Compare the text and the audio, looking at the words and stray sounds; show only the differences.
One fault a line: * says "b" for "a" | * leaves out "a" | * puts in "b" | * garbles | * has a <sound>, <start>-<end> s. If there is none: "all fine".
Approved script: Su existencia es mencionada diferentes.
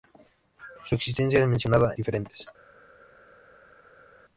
all fine